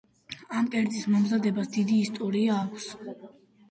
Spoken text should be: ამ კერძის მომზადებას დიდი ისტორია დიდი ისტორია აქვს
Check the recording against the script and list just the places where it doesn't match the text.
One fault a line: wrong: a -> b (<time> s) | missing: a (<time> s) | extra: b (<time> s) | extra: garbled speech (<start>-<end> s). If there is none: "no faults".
missing: დიდი ისტორია (2.6 s)